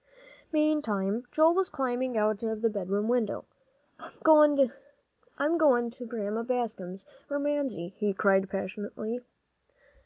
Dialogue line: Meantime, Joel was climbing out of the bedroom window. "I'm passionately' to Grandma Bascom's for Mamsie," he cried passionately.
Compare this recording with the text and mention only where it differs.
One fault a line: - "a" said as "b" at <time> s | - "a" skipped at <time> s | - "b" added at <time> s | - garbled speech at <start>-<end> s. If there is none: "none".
- "passionately" said as "goin" at 5.6 s